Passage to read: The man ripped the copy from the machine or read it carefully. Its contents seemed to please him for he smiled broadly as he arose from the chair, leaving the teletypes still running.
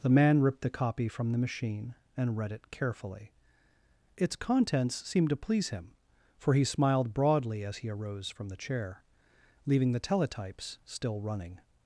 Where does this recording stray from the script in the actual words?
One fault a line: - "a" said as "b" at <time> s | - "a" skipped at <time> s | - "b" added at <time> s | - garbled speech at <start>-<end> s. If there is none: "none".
- "or" said as "and" at 2.2 s